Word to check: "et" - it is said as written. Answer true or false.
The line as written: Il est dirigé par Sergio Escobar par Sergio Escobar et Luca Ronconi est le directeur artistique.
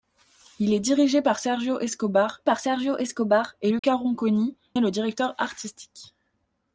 true